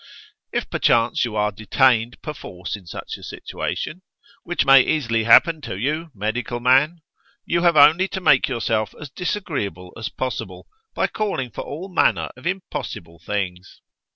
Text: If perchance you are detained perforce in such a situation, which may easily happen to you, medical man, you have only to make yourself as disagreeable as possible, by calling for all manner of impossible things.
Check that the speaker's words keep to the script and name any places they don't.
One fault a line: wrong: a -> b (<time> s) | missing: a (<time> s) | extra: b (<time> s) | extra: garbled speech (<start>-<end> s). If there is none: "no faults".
no faults